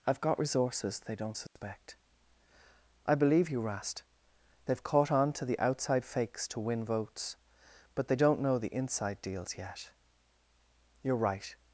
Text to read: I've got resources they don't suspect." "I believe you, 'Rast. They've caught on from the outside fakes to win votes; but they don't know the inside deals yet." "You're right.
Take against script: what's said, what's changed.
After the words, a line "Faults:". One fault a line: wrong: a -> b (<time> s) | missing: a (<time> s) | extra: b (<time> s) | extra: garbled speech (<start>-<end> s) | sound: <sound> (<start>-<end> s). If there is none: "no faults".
I've got resources they don't suspect." "I believe you, 'Rast. They've caught on to the outside fakes to win votes; but they don't know the inside deals yet." "You're right.
Faults:
sound: dropout (1.5-1.6 s)
wrong: from -> to (5.3 s)